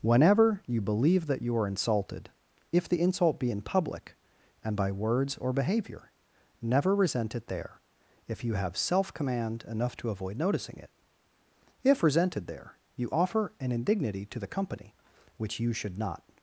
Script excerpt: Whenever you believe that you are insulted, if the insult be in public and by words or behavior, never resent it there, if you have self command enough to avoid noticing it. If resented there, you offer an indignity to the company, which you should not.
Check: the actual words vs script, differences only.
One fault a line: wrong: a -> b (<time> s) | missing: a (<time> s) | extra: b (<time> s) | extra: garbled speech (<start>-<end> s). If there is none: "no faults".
no faults